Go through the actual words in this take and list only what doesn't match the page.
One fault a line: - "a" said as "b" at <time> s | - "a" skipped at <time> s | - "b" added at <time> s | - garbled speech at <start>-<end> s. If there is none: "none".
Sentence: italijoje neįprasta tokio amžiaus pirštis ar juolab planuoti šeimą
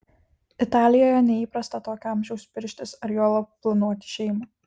none